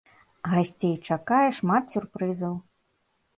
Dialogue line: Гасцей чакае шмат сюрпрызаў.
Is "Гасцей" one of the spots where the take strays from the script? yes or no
no